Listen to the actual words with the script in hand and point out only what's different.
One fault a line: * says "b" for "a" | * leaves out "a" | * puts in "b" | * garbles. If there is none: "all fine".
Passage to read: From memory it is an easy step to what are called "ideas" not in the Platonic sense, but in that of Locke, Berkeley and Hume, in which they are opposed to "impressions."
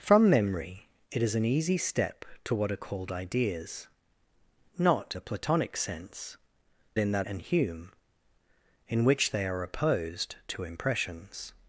* leaves out "in"
* leaves out "but"
* leaves out "of Locke Berkeley"